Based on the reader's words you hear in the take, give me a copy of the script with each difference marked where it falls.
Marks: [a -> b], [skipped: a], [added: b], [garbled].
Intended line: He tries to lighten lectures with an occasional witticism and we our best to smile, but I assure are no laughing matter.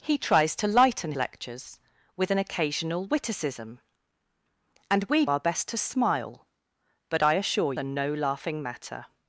He tries to lighten lectures with an occasional witticism and we our best to smile, but I assure are no laughing matter.